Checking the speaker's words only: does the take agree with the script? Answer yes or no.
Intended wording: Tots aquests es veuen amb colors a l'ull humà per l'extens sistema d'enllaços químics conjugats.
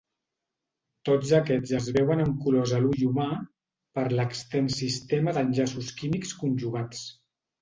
yes